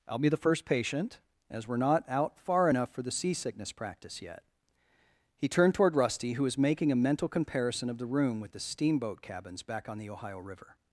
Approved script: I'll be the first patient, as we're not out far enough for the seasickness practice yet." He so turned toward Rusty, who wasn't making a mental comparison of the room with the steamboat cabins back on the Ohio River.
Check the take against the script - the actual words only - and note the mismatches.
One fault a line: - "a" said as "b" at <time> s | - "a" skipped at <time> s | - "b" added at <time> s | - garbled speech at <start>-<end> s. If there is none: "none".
- "so" skipped at 5.5 s
- "wasn't" said as "was" at 6.4 s